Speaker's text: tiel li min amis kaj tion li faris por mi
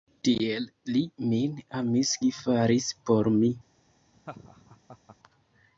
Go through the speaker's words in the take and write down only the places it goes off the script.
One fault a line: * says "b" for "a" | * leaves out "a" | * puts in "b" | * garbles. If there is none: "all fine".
* leaves out "kaj tion"